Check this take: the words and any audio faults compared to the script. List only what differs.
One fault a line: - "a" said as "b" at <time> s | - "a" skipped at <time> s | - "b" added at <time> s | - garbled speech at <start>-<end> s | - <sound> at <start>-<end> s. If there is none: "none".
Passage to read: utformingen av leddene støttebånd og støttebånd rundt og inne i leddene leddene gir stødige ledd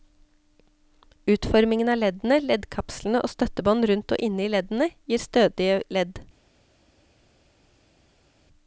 - "støttebånd" said as "leddkapslene" at 2.5 s
- "leddene" skipped at 4.9 s